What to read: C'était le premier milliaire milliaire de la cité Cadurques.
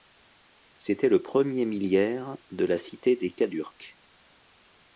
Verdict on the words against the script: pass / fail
fail